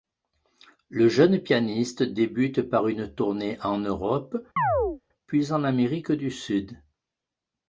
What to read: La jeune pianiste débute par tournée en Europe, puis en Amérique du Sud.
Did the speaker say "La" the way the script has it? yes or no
no